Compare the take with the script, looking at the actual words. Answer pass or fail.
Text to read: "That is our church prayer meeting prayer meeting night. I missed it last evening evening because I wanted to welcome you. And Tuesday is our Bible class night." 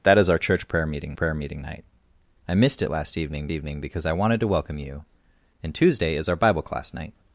pass